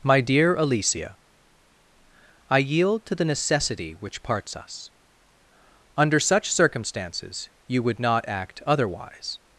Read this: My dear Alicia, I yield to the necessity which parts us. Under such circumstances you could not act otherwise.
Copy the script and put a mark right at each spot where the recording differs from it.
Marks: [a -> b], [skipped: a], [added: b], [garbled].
My dear Alicia, I yield to the necessity which parts us. Under such circumstances you [could -> would] not act otherwise.